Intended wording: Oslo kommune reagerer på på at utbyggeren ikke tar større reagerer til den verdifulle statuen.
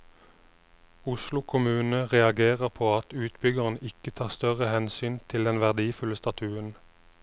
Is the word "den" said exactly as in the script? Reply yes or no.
yes